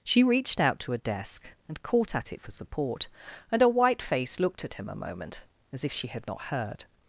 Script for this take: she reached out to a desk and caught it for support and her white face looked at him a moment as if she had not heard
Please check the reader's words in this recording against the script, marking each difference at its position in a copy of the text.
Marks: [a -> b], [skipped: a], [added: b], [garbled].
she reached out to a desk and caught [added: at] it for support and her white face looked at him a moment as if she had not heard